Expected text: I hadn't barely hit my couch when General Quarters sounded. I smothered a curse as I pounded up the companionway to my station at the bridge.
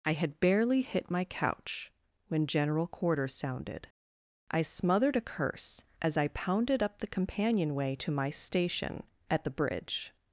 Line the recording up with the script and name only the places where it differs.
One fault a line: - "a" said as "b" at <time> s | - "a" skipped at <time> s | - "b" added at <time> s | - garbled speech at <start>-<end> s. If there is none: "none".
- "hadn't" said as "had" at 0.1 s